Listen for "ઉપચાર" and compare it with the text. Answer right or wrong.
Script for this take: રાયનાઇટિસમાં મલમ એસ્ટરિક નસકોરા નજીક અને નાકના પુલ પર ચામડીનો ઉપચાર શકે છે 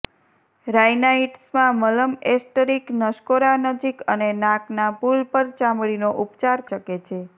right